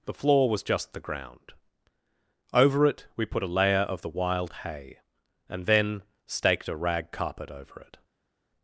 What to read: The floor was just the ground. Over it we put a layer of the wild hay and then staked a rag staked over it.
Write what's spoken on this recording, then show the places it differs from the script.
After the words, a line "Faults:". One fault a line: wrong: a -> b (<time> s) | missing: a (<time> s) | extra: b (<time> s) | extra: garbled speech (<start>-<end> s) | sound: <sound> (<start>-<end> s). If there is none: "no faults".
The floor was just the ground. Over it we put a layer of the wild hay and then staked a rag carpet over it.
Faults:
wrong: staked -> carpet (7.1 s)